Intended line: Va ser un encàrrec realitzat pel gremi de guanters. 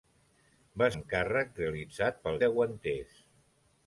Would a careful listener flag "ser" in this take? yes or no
yes